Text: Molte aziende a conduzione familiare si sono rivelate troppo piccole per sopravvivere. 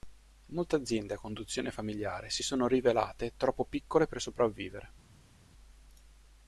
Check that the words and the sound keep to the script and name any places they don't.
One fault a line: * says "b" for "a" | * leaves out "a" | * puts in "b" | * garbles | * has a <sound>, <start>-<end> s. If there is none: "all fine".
all fine